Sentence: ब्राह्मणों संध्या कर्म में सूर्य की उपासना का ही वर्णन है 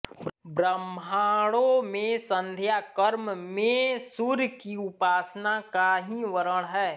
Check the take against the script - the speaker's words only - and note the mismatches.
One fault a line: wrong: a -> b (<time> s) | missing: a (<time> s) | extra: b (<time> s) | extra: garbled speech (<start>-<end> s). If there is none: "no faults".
extra: में (1.8 s)